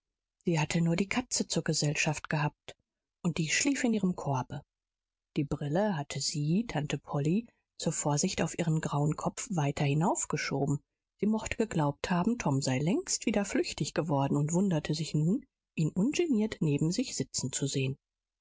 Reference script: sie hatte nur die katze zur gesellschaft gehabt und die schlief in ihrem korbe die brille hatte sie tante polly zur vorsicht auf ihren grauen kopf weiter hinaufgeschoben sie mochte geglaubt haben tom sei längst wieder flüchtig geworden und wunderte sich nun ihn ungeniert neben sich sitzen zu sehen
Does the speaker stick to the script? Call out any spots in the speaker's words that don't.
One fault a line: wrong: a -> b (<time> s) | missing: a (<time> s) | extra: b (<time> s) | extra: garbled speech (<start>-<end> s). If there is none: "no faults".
no faults